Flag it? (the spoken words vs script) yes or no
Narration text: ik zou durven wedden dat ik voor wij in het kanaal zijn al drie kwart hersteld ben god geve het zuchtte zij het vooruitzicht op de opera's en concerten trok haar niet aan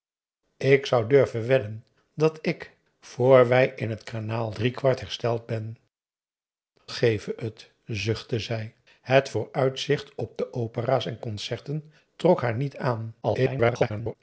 yes